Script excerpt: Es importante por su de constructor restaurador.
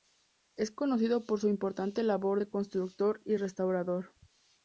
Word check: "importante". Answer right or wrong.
wrong